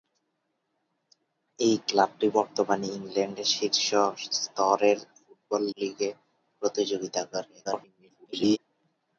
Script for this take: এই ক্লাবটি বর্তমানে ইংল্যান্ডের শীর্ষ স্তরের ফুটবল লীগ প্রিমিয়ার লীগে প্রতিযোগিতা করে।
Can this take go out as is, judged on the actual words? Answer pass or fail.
fail